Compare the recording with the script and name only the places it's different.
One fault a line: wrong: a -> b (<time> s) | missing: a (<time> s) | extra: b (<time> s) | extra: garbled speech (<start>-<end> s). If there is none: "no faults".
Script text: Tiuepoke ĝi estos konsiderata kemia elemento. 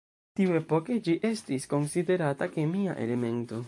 wrong: estos -> estis (1.3 s)